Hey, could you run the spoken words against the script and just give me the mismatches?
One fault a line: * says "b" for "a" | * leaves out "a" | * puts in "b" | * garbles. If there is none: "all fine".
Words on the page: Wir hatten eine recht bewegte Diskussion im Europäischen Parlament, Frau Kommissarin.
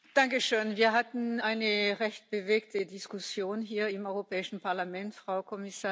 * puts in "hier"